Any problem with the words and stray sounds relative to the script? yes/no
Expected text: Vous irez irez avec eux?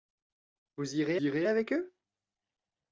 no